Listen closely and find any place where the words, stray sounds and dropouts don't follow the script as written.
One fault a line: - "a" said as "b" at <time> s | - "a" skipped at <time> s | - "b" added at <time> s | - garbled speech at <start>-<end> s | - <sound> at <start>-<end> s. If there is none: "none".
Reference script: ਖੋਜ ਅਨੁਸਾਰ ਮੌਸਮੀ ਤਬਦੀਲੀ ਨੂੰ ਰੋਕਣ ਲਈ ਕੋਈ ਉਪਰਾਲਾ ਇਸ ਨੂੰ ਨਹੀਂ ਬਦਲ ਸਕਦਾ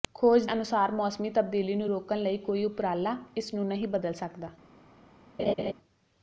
- laugh at 5.4-5.7 s